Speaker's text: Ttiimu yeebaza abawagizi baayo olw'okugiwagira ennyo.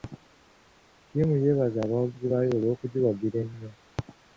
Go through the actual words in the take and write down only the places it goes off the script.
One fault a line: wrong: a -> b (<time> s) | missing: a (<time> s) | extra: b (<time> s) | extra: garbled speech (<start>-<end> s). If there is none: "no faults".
no faults